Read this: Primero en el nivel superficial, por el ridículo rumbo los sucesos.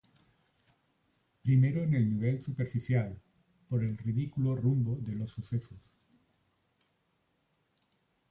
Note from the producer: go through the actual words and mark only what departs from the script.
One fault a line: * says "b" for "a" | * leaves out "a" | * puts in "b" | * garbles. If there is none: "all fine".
* puts in "de"